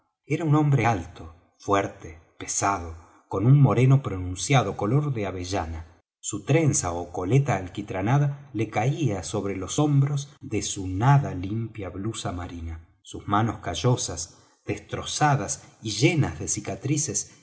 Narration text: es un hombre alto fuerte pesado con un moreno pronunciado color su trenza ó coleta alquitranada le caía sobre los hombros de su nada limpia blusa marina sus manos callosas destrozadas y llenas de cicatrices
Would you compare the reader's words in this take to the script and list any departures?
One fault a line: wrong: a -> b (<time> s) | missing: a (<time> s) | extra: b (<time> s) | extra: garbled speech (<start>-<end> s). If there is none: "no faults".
wrong: es -> era (0.2 s)
extra: de avellana (5.1 s)